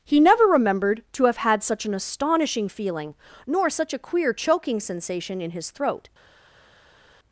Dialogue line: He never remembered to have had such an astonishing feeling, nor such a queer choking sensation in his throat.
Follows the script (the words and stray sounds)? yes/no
yes